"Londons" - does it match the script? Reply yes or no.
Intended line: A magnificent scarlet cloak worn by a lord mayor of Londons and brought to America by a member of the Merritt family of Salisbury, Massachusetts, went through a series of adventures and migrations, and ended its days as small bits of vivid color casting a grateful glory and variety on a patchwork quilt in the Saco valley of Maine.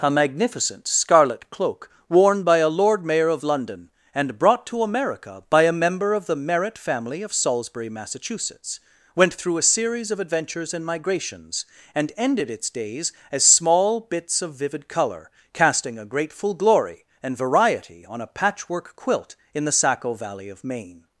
no